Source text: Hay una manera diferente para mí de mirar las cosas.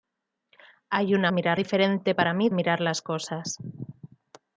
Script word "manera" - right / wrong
wrong